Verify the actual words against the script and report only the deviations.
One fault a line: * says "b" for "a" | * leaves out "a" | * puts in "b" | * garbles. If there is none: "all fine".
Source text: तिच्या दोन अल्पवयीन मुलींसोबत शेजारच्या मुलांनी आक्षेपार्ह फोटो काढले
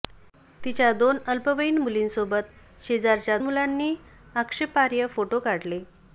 all fine